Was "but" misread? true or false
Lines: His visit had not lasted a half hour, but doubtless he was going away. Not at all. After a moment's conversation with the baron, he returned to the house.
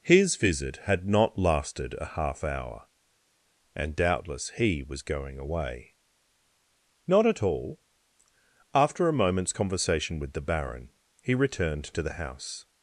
true